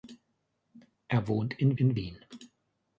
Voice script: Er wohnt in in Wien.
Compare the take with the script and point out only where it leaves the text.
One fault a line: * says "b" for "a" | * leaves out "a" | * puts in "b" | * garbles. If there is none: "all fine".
all fine